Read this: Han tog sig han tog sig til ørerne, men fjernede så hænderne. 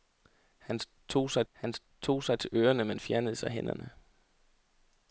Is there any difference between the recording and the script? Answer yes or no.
no